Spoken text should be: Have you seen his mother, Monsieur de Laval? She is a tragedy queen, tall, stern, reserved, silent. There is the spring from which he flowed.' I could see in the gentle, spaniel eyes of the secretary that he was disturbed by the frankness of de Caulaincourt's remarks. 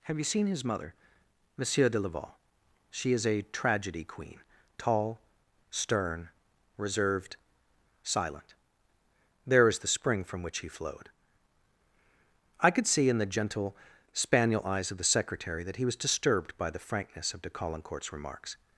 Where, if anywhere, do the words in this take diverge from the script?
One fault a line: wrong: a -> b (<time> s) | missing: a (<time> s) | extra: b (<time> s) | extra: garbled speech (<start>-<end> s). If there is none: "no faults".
no faults